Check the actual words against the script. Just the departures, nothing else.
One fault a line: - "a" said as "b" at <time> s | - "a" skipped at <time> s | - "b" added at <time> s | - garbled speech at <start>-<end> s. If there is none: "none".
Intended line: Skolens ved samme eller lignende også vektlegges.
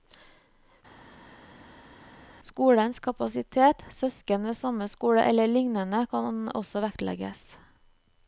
- "kapasitet søsken" added at 3.1 s
- "skole" added at 4.9 s
- "kan" added at 6.1 s